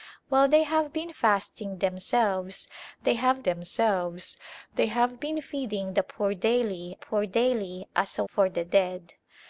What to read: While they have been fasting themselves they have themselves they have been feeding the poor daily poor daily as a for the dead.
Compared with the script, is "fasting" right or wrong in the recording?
right